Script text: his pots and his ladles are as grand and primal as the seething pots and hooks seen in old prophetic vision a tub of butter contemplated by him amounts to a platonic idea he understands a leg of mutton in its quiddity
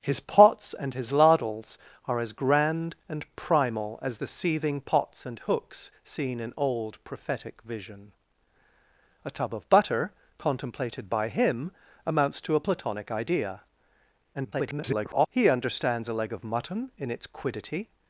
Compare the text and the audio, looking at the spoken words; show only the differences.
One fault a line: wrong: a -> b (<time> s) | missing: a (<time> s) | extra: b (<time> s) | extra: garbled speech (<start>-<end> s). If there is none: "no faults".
extra: garbled speech (14.3-15.3 s)